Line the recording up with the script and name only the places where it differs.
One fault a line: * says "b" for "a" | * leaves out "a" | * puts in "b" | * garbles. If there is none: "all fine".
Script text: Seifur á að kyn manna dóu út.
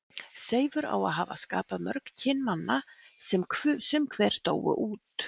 * puts in "hafa skapað mörg"
* puts in "sem sum hver"